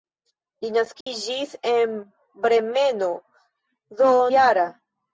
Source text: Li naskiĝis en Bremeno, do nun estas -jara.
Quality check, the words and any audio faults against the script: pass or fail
fail